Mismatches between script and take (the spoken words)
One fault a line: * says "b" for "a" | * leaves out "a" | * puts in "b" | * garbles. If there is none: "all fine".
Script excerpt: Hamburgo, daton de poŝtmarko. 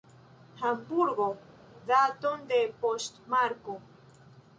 all fine